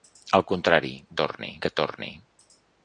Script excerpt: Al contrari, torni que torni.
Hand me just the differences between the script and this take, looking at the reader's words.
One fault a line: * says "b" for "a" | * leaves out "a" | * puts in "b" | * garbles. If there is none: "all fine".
all fine